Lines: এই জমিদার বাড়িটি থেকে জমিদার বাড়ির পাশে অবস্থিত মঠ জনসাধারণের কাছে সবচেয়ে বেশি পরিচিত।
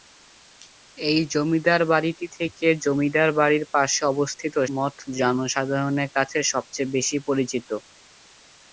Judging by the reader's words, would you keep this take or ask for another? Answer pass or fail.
pass